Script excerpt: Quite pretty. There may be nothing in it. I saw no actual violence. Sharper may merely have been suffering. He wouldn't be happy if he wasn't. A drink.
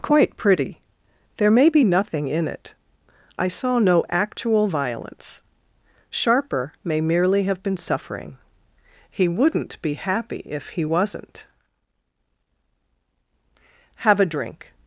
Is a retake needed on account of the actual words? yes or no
yes